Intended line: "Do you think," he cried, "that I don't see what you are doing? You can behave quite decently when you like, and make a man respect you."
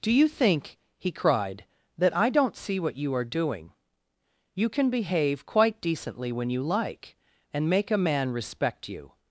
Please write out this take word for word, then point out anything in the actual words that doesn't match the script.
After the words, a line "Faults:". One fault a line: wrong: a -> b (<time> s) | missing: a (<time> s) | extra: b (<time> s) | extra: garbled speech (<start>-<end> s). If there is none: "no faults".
"Do you think," he cried, "that I don't see what you are doing? You can behave quite decently when you like, and make a man respect you."
Faults:
no faults